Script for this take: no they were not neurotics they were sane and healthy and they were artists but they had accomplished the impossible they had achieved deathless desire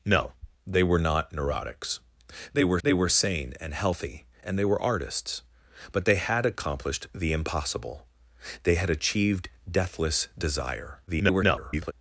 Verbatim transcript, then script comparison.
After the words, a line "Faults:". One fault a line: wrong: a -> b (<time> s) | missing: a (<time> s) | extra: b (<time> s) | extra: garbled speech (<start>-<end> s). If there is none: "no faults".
no they were not neurotics they were they were sane and healthy and they were artists but they had accomplished the impossible they had achieved deathless desire [garbled]
Faults:
extra: they were (2.8 s)
extra: garbled speech (11.1-11.9 s)